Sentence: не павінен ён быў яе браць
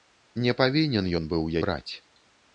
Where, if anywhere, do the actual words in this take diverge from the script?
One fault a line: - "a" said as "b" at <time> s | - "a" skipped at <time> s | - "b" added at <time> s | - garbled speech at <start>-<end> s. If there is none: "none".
- "яе" skipped at 1.5 s